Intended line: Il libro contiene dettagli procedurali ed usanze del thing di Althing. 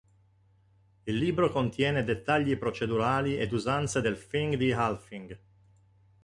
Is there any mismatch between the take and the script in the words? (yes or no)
no